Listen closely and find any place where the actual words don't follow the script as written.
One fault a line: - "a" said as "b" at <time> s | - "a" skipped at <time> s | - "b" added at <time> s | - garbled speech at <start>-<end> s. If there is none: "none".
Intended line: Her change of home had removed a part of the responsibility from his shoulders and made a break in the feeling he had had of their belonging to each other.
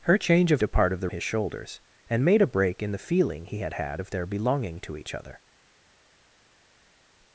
- "home had removed" skipped at 0.6 s
- "responsibility from" skipped at 1.1 s